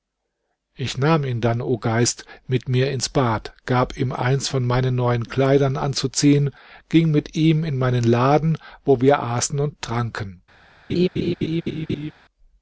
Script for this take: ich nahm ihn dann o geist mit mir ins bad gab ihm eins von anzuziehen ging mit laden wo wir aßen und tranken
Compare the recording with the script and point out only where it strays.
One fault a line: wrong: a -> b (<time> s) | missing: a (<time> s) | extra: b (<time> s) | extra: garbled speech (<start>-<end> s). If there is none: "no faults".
extra: meinen neuen kleidern (4.7 s)
extra: ihm in meinen (7.3 s)